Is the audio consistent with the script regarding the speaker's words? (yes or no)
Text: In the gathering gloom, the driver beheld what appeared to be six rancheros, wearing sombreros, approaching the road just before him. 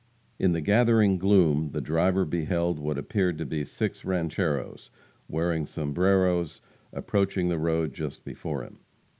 yes